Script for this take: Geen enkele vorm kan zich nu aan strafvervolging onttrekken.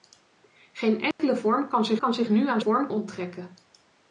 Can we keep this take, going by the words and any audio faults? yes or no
no